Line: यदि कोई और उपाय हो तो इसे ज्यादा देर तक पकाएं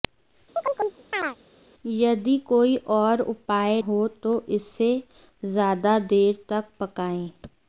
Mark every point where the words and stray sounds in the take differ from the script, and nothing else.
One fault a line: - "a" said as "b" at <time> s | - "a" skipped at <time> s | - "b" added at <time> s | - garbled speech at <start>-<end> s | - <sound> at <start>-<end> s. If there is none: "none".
- chirp at 0.6-1.4 s